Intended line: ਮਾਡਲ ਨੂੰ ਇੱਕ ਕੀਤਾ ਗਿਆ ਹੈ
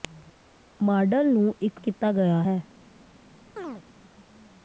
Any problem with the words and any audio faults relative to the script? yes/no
yes